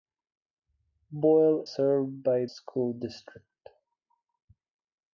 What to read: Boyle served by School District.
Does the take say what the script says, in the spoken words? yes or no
yes